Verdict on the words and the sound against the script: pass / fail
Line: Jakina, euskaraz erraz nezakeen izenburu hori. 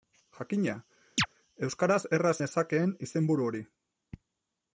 fail